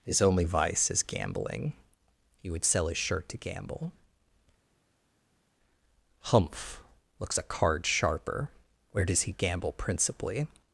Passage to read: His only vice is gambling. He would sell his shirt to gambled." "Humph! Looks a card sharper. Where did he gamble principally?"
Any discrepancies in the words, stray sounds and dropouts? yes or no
yes